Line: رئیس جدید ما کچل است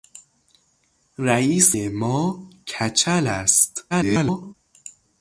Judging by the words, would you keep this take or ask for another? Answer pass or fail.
fail